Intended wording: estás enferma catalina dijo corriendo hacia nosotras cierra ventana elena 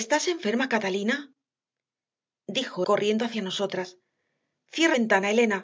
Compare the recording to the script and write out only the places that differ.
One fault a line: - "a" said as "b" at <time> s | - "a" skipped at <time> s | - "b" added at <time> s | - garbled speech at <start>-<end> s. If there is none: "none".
none